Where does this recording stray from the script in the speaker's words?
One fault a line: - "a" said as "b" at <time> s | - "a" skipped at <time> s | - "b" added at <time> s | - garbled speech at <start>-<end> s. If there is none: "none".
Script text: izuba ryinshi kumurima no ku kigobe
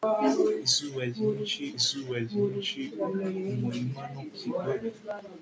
- "izuba ryinshi" added at 1.8 s
- "ku" skipped at 4.2 s